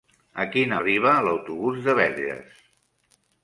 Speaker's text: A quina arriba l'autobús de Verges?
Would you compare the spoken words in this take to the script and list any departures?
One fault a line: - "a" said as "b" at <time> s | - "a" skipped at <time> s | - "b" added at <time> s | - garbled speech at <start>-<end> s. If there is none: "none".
none